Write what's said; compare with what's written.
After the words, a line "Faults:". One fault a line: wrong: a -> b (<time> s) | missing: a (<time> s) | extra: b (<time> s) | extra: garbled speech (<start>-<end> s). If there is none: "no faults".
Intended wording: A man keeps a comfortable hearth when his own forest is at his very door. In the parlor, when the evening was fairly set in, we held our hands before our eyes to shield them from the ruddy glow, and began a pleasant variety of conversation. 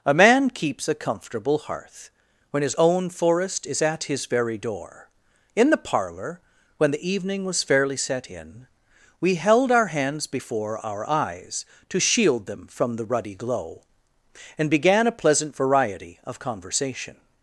A man keeps a comfortable hearth when his own forest is at his very door. In the parlor, when the evening was fairly set in, we held our hands before our eyes to shield them from the ruddy glow, and began a pleasant variety of conversation.
Faults:
no faults